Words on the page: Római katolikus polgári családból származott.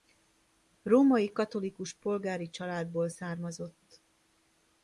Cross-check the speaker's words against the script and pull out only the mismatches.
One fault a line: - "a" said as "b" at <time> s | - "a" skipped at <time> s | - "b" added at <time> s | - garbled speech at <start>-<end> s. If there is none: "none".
none